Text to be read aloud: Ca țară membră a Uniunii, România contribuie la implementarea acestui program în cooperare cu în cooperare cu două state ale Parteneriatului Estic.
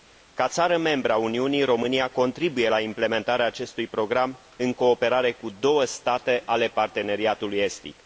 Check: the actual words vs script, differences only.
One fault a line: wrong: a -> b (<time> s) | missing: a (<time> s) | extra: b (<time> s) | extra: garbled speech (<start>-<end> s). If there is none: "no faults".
missing: în cooperare cu (5.5 s)